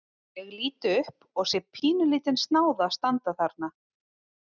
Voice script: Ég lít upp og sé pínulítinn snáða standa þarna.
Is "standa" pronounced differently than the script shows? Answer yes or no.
no